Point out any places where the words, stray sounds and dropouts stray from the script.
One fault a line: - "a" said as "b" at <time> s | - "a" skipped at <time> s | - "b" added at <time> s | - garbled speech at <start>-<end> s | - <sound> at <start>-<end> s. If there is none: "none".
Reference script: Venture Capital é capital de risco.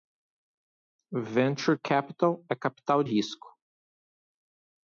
- "de" skipped at 3.0 s